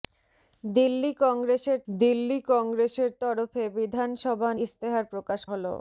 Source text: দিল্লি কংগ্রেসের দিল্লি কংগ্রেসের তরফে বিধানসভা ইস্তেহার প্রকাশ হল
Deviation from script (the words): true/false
false